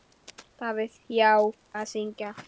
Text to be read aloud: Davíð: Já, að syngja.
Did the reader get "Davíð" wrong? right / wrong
right